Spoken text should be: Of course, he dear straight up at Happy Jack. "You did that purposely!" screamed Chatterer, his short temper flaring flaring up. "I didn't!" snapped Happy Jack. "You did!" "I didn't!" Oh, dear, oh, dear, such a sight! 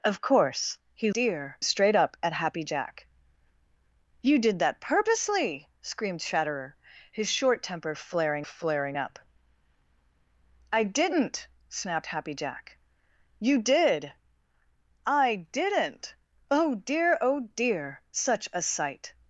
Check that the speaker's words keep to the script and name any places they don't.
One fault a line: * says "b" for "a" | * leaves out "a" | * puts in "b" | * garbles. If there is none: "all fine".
all fine